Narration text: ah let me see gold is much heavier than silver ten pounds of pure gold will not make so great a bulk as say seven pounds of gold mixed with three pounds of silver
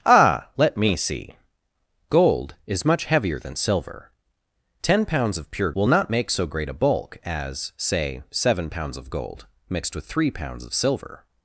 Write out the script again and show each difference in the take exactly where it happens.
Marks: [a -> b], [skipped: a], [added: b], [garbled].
ah let me see gold is much heavier than silver ten pounds of pure [skipped: gold] will not make so great a bulk as say seven pounds of gold mixed with three pounds of silver